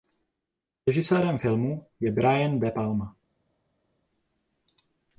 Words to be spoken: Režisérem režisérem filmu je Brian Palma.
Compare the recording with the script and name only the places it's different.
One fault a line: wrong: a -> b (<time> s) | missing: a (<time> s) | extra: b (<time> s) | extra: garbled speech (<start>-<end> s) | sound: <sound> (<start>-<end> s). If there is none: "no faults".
missing: režisérem (1.4 s)
extra: De (2.6 s)